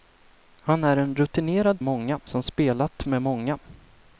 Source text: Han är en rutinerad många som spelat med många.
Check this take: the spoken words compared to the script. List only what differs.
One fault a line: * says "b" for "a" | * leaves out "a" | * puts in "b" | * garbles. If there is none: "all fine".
all fine